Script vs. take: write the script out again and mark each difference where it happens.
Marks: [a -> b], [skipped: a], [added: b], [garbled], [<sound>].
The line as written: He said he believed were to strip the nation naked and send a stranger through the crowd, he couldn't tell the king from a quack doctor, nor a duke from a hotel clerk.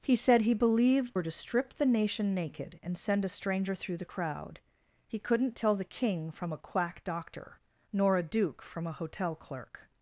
He said he believed were to strip the nation naked and send a stranger through the crowd, he couldn't tell the king from a quack doctor, nor a duke from a hotel clerk.